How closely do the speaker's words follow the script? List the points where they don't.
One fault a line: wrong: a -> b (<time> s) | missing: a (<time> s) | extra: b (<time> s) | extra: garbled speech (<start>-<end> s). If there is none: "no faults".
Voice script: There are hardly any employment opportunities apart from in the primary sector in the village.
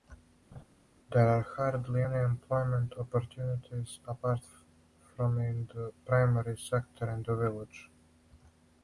no faults